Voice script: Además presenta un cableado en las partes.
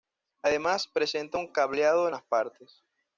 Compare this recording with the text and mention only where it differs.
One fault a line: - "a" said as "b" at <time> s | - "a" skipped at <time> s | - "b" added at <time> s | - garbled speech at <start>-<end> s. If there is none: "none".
none